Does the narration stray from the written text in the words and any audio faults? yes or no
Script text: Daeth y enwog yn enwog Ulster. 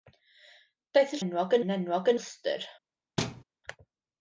yes